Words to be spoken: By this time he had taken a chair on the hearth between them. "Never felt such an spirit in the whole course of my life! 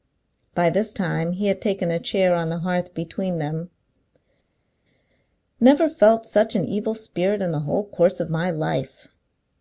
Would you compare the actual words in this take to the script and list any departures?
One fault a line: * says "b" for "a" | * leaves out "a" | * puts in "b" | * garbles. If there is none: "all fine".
* puts in "evil"